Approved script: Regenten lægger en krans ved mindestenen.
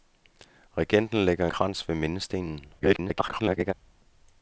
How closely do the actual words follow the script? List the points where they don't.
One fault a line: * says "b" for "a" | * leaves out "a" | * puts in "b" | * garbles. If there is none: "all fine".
* leaves out "en"
* garbles